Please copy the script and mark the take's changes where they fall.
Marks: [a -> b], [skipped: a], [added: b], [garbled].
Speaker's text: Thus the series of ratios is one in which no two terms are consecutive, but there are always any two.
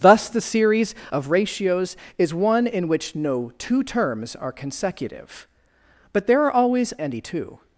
Thus the series of ratios is one in which no two terms are consecutive, but there are always any two.